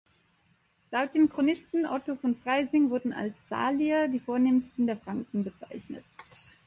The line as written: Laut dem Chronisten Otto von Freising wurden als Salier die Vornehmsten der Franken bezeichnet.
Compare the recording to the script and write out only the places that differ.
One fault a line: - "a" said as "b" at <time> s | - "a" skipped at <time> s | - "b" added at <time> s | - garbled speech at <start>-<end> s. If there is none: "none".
none